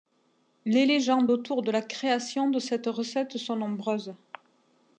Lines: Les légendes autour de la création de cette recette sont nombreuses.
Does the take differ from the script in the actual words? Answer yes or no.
no